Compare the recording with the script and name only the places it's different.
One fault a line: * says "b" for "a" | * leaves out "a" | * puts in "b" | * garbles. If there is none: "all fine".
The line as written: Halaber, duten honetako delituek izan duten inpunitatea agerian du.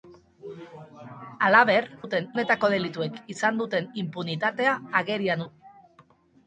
all fine